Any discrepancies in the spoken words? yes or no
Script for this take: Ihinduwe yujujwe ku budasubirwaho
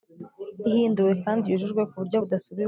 yes